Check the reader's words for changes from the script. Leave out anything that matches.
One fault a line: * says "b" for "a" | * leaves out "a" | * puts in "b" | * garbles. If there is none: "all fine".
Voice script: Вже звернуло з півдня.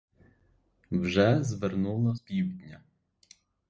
* leaves out "з"